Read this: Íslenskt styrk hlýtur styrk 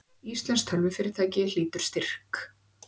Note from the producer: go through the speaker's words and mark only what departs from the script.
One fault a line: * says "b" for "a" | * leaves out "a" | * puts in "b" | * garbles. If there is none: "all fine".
* says "tölvufyrirtæki" for "styrk"